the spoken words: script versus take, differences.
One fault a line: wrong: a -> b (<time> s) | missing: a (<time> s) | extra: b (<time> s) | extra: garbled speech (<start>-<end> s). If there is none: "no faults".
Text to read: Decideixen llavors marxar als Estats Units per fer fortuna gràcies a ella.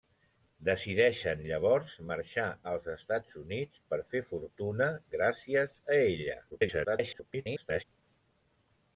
extra: garbled speech (6.5-7.8 s)